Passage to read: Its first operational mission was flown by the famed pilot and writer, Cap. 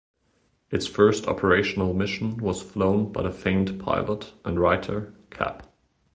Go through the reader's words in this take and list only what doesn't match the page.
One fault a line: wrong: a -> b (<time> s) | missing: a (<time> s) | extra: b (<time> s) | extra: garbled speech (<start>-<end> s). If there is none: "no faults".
no faults